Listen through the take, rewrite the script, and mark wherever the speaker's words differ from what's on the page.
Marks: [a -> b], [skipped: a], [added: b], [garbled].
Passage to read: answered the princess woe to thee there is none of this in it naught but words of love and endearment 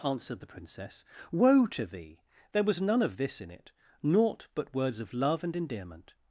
answered the princess woe to thee there [is -> was] none of this in it naught but words of love and endearment